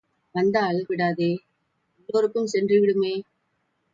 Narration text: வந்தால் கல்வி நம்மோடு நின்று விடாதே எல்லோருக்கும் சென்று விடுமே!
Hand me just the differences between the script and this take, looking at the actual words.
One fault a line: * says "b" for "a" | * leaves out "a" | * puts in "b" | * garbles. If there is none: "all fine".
* leaves out "கல்வி நம்மோடு நின்று"